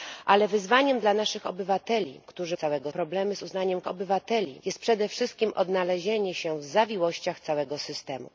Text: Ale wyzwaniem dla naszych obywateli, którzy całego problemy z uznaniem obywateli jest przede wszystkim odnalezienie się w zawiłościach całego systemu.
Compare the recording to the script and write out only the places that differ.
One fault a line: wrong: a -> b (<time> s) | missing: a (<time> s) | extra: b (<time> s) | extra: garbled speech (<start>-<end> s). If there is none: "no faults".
no faults